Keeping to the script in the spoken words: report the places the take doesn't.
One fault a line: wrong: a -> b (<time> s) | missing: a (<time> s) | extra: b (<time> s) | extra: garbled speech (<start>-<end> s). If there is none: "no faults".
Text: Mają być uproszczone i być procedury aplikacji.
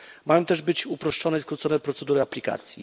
extra: też (0.5 s)
wrong: być -> skrócone (1.4 s)